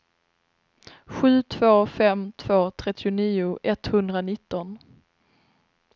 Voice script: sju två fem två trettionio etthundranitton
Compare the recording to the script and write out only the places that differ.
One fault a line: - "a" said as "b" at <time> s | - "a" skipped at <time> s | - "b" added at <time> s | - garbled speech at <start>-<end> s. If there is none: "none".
none